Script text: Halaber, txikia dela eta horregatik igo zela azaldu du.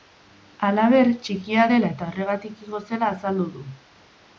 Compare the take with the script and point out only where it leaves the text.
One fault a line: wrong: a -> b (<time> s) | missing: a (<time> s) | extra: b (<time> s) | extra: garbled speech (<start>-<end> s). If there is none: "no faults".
no faults